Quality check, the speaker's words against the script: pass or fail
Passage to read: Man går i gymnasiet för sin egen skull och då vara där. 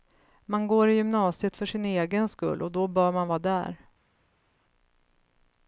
fail